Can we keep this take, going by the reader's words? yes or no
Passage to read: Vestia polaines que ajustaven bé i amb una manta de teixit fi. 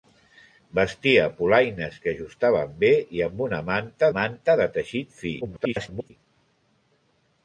no